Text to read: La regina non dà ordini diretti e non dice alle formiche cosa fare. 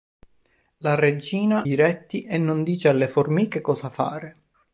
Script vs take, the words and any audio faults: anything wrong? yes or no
yes